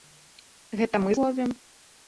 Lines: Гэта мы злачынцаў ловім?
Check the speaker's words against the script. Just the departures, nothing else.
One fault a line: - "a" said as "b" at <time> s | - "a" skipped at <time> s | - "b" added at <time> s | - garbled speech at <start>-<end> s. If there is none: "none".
- "злачынцаў" skipped at 1.1 s